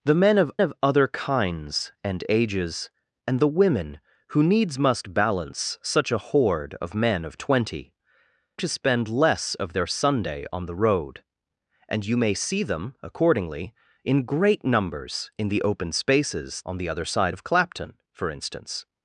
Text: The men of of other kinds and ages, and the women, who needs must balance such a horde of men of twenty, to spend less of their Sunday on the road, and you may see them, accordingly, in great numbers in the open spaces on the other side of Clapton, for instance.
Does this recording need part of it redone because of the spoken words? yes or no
no